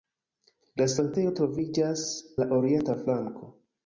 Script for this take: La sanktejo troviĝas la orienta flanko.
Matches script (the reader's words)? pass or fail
pass